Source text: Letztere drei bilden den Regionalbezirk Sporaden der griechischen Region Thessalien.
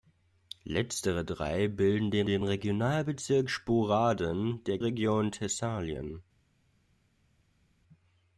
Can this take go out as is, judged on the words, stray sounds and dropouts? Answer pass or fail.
fail